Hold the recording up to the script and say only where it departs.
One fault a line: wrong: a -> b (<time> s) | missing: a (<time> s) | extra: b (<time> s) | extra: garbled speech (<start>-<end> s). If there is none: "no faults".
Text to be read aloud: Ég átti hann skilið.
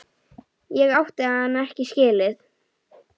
extra: ekki (1.6 s)